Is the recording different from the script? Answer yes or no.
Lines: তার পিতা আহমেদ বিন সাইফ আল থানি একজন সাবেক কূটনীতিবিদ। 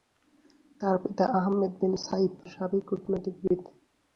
yes